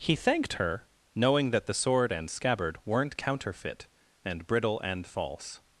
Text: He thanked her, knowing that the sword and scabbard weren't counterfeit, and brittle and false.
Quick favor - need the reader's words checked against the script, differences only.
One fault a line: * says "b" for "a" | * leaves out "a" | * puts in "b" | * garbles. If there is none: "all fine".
all fine